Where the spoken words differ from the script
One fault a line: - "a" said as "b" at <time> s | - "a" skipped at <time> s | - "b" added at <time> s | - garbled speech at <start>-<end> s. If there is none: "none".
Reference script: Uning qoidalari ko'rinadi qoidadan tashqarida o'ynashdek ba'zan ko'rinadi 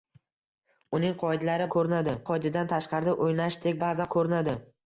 none